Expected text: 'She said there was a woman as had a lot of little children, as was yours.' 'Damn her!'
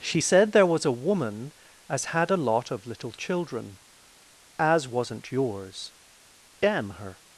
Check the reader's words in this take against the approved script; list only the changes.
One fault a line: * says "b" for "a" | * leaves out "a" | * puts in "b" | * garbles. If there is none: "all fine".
* says "wasn't" for "was"